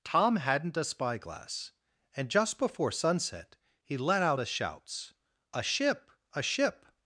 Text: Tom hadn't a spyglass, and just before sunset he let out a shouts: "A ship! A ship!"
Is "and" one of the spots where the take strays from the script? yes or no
no